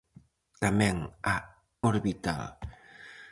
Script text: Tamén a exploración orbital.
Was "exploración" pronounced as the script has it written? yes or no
no